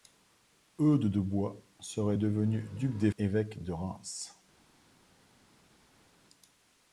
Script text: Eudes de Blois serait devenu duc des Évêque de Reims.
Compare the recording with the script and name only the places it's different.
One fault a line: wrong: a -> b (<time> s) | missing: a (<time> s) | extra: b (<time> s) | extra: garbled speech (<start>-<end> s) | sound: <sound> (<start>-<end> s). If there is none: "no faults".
no faults